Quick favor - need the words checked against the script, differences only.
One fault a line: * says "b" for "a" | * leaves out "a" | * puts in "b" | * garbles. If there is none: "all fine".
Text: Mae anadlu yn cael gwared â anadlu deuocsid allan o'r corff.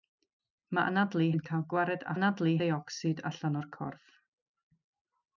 all fine